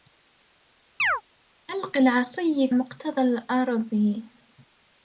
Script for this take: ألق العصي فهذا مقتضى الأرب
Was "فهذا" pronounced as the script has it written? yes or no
no